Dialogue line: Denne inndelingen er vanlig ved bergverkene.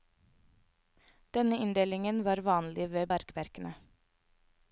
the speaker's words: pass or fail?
fail